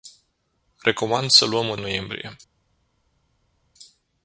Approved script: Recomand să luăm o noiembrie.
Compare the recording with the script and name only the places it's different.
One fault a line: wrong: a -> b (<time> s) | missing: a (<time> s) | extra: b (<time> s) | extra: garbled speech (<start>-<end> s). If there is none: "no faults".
no faults